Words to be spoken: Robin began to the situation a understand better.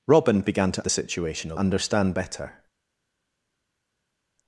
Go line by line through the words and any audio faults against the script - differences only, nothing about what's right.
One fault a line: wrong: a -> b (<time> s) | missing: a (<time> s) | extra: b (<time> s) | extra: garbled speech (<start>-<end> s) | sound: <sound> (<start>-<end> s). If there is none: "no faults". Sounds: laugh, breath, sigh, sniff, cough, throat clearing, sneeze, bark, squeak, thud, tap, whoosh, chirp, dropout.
no faults